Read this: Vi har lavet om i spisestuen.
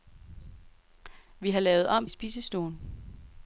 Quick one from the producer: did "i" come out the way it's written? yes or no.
yes